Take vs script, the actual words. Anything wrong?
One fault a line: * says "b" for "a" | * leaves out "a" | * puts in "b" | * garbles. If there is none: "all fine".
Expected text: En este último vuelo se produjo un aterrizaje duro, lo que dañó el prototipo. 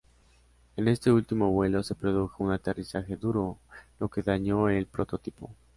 all fine